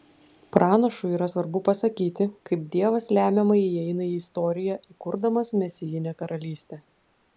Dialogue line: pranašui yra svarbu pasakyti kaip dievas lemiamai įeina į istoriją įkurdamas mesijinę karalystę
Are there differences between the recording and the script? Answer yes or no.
no